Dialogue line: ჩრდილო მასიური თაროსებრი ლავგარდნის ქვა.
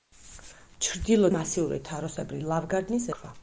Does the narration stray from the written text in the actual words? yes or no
no